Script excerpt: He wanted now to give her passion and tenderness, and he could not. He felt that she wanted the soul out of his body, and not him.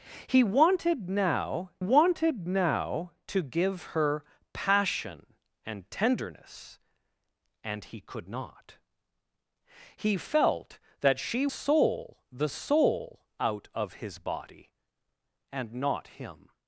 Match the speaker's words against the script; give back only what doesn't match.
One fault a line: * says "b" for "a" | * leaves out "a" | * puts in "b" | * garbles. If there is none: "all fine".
* puts in "wanted now"
* says "soul" for "wanted"